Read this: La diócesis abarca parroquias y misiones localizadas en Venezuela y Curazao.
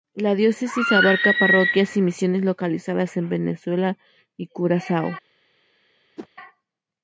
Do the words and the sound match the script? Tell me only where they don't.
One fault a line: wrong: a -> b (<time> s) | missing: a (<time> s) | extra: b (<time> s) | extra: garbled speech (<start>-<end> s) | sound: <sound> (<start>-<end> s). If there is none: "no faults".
sound: whoosh (6.2-6.3 s)